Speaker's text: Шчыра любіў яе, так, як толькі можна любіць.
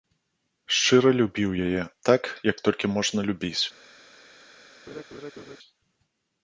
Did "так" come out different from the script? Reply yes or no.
no